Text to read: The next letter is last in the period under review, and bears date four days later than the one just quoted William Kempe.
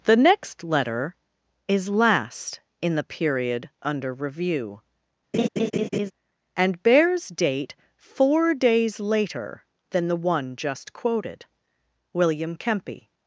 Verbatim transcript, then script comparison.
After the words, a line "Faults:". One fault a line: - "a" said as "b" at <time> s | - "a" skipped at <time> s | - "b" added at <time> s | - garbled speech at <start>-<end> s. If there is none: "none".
The next letter is last in the period under review, and bears date four days later than the one just quoted William Kempe.
Faults:
none